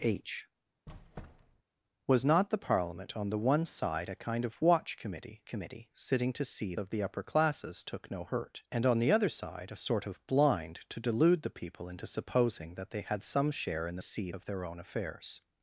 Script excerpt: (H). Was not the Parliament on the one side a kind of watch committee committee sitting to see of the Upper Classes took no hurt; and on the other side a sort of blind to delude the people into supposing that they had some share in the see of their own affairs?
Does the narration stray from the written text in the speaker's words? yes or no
no